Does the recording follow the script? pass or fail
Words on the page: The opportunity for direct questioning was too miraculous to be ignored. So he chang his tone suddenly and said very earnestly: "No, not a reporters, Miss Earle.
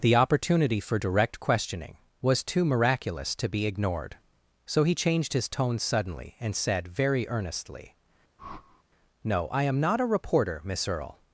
fail